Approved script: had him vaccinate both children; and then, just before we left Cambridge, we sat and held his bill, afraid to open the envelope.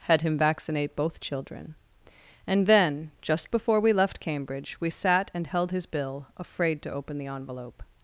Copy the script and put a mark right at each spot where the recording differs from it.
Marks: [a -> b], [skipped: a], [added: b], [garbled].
had him vaccinate both children; and then, just before we left Cambridge, we sat and held his bill, afraid to open the envelope.